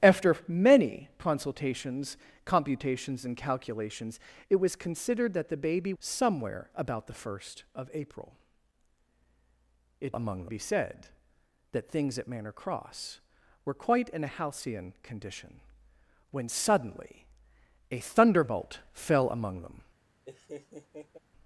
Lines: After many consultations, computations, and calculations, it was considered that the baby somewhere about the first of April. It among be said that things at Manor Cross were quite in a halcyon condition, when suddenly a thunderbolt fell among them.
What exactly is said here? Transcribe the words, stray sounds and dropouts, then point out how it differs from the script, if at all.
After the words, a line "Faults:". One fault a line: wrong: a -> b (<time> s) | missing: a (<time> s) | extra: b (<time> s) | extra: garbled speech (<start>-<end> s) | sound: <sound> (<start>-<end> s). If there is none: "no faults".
After many consultations, computations, and calculations, it was considered that the baby somewhere about the first of April. It among be said that things at Manor Cross were quite in a halcyon condition, when suddenly a thunderbolt fell among them.
Faults:
sound: laugh (20.2-21.2 s)